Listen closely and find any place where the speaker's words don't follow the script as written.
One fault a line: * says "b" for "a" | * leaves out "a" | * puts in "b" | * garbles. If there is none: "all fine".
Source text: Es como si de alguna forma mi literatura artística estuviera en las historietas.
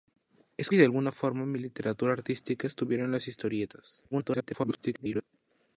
* leaves out "como"
* garbles